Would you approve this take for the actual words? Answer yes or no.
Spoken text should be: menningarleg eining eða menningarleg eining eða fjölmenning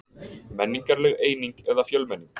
no